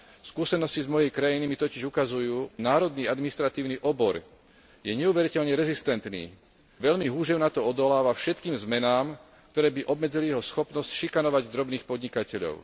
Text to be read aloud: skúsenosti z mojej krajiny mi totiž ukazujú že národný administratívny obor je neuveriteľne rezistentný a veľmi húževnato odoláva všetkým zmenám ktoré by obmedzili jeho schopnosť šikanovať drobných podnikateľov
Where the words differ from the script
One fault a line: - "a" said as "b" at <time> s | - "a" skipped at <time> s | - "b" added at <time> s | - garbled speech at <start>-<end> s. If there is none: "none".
- "že" skipped at 2.5 s
- "a" skipped at 6.3 s